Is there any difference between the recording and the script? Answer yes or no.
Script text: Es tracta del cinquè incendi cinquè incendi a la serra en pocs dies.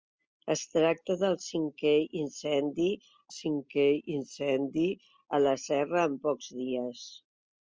no